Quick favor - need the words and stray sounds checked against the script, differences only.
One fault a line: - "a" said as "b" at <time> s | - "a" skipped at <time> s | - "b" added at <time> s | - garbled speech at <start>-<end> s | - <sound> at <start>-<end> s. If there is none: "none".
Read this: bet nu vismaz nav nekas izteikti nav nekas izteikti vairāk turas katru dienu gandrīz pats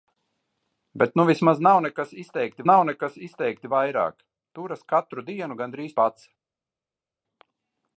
none